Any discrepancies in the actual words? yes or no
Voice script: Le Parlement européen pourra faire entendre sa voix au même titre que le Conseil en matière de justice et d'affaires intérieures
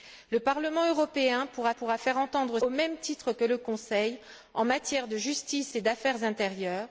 yes